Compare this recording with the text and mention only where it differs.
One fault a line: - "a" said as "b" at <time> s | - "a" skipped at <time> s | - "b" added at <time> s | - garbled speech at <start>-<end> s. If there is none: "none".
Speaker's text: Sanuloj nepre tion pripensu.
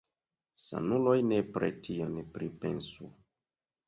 none